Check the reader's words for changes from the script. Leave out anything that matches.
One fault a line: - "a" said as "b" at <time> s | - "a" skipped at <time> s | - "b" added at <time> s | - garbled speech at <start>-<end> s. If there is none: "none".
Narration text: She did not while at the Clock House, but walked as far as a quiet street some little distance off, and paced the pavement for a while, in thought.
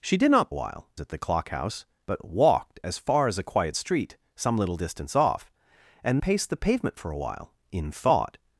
none